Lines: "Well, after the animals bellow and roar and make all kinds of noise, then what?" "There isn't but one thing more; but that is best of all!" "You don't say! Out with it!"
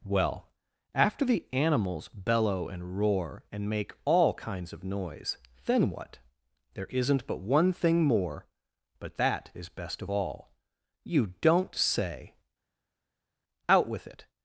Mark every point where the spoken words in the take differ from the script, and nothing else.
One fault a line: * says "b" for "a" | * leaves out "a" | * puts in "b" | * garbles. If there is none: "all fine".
all fine